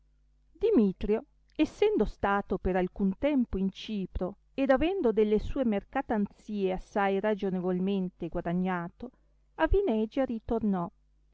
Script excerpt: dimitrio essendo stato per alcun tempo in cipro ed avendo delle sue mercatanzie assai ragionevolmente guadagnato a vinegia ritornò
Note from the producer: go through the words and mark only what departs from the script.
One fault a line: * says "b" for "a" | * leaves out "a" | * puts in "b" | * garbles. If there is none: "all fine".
all fine